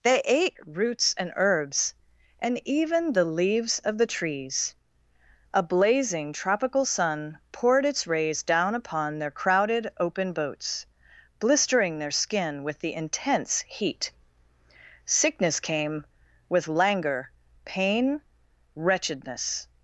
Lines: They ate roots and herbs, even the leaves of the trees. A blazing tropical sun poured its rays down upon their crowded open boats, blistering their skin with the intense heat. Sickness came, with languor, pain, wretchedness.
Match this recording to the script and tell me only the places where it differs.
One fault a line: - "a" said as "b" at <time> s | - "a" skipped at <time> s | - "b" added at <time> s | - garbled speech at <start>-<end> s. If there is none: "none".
- "and" added at 2.4 s